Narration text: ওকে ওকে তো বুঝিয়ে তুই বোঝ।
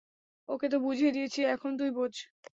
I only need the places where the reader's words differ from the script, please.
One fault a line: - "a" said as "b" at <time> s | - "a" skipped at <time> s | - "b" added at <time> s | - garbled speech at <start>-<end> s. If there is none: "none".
- "ওকে" skipped at 0.7 s
- "দিয়েছি এখন" added at 1.1 s